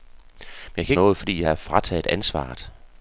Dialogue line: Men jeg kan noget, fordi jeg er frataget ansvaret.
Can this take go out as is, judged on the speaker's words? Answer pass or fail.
pass